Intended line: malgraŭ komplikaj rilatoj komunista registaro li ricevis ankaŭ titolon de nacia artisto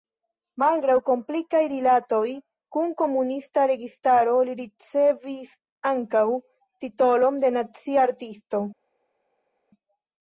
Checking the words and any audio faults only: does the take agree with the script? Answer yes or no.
no